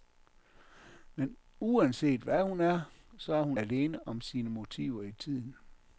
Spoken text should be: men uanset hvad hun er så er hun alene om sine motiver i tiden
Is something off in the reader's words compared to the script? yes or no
no